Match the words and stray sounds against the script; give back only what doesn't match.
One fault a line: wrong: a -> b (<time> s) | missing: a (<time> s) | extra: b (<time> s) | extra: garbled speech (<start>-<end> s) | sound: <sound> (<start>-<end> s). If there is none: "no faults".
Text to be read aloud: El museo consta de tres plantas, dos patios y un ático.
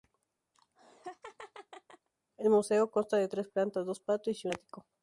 sound: laugh (0.5-2.1 s)
missing: un (4.5 s)